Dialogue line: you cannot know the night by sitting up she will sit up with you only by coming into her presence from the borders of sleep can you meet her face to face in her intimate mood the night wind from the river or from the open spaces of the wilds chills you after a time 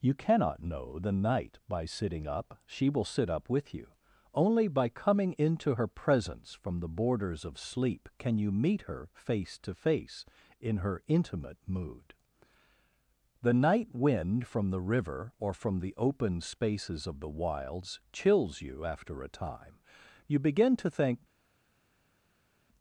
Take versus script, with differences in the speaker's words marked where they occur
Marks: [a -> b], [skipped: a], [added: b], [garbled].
you cannot know the night by sitting up she will sit up with you only by coming into her presence from the borders of sleep can you meet her face to face in her intimate mood the night wind from the river or from the open spaces of the wilds chills you after a time [added: you begin to think]